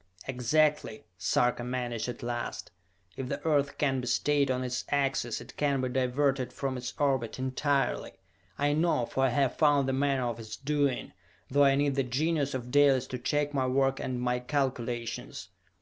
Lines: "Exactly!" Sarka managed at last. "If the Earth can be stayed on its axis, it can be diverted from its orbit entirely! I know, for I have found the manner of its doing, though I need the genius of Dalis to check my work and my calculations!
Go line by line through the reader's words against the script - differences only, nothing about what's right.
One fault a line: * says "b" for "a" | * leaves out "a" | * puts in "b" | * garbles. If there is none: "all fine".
all fine